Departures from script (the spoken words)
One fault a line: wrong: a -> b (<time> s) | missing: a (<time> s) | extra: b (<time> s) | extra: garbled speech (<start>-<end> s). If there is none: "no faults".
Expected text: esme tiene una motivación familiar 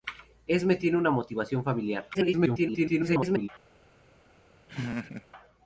extra: garbled speech (2.1-3.5 s)